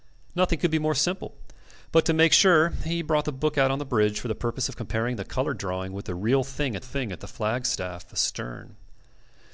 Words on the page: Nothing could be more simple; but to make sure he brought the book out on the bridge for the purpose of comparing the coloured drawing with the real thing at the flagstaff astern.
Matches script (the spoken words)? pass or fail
fail